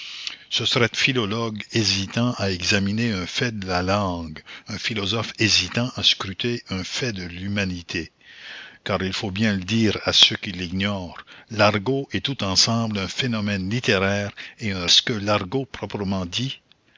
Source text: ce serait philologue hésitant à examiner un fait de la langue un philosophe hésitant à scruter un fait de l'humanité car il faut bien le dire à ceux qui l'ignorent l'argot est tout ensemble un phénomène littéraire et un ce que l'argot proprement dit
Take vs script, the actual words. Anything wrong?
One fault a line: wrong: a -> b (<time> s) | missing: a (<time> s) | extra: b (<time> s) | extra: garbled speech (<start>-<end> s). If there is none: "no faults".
no faults